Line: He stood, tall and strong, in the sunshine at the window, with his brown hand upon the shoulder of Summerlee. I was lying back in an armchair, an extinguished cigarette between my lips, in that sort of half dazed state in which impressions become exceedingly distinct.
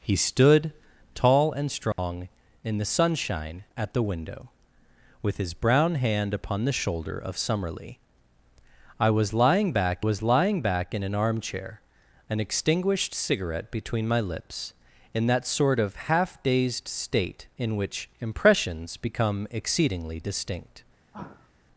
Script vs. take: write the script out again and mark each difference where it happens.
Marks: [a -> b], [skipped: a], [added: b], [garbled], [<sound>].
He stood, tall and strong, [dropout] in the sunshine at the window, with his brown hand upon the shoulder of Summerlee. I was lying back [added: was lying back] in an armchair, an extinguished cigarette between my lips, in that sort of half dazed state in which impressions become exceedingly distinct. [sigh]